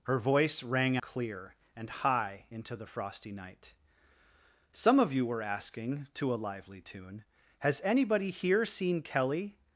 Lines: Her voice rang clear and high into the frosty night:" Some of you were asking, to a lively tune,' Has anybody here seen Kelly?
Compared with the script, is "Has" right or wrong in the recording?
right